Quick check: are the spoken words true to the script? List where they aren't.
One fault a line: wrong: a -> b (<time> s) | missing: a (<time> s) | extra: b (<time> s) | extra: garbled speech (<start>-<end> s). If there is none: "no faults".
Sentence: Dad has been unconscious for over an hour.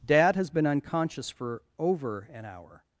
no faults